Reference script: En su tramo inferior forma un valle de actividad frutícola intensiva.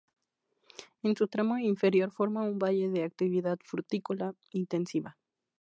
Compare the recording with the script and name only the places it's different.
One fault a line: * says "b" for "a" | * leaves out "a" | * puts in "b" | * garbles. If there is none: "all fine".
all fine